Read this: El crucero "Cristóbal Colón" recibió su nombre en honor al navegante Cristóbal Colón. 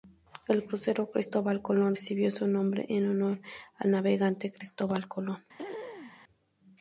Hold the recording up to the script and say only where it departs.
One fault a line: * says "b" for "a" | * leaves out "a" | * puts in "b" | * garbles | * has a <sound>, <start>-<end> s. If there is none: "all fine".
* has a throat clearing, 5.6-6.2 s